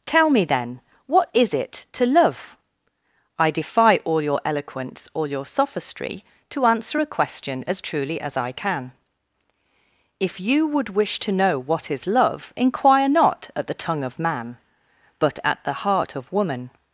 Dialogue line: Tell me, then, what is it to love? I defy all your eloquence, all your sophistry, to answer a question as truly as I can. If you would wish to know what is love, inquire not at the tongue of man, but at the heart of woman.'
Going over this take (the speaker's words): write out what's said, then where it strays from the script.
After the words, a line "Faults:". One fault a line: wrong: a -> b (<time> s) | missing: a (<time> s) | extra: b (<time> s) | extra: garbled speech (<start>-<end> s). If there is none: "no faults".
Tell me, then, what is it to love? I defy all your eloquence, all your sophistry, to answer a question as truly as I can. If you would wish to know what is love, inquire not at the tongue of man, but at the heart of woman.'
Faults:
no faults